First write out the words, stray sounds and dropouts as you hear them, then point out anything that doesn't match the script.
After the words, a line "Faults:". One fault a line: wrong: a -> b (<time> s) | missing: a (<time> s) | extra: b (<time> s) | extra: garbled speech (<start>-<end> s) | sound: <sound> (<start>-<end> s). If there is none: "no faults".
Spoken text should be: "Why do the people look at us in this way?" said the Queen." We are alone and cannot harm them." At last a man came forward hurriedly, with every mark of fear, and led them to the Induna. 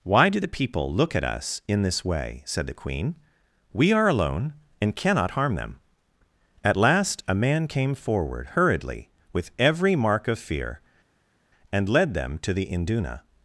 "Why do the people look at us in this way?" said the Queen." We are alone and cannot harm them." At last a man came forward hurriedly, with every mark of fear, and led them to the Induna.
Faults:
no faults